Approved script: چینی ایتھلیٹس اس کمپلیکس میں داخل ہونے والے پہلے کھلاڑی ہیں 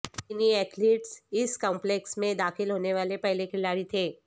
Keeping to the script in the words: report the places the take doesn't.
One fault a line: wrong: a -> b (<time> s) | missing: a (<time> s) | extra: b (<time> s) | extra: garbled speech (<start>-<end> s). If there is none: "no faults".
wrong: ہیں -> تھے (3.8 s)